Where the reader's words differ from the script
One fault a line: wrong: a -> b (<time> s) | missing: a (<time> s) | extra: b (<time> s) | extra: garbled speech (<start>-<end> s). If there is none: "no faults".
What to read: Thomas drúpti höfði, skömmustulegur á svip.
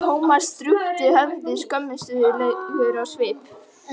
no faults